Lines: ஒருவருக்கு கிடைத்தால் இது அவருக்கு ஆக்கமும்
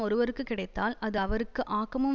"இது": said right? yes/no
no